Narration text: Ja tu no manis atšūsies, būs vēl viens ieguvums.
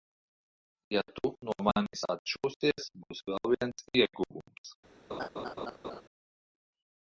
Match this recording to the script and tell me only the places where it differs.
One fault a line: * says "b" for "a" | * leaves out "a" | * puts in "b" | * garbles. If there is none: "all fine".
all fine